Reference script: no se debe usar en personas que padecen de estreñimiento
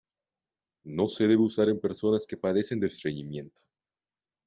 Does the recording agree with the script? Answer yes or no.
yes